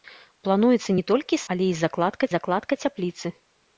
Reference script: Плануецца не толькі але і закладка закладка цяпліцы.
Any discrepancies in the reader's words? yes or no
no